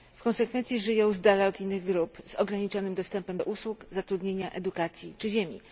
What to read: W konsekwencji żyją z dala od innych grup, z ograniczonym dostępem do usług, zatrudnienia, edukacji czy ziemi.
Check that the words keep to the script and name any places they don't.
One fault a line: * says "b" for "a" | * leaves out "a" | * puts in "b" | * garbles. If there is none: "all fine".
all fine